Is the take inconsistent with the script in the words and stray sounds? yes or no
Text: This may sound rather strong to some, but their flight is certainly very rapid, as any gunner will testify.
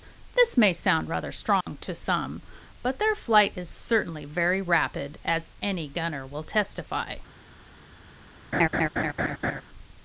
yes